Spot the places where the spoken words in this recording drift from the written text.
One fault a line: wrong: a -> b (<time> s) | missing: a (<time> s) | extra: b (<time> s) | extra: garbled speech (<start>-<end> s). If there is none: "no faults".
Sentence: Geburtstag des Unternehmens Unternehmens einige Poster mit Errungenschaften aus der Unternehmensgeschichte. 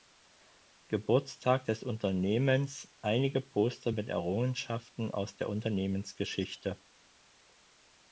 missing: Unternehmens (2.9 s)